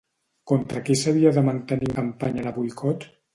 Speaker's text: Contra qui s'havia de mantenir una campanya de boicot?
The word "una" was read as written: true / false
false